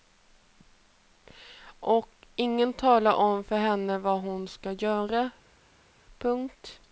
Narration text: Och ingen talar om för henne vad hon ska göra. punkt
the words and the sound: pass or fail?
pass